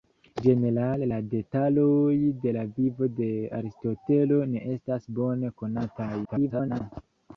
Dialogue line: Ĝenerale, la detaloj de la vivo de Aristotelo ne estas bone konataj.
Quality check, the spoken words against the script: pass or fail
fail